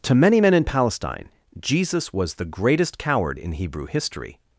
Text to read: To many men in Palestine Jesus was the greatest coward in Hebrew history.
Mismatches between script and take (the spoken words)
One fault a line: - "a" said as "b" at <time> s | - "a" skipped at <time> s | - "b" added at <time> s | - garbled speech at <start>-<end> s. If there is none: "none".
none